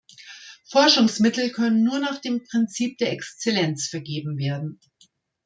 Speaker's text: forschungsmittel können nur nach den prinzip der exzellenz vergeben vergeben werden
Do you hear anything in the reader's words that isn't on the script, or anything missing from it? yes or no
yes